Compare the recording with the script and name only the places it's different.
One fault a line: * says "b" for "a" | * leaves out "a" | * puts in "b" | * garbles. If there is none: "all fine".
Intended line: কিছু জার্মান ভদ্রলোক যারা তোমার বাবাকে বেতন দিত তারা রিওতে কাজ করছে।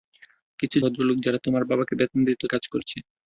* leaves out "জার্মান"
* leaves out "তারা রিওতে"